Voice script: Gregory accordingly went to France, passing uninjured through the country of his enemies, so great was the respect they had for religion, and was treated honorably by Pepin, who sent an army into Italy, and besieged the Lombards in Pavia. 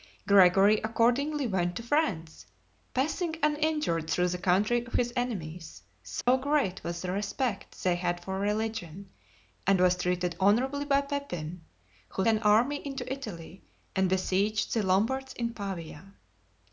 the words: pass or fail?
fail